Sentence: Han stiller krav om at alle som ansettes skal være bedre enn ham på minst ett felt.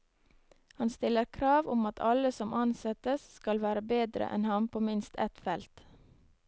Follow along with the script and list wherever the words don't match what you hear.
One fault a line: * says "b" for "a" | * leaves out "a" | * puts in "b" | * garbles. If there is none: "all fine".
all fine